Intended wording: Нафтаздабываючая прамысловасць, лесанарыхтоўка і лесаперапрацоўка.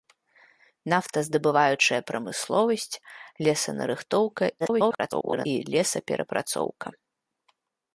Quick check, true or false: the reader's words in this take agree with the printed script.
false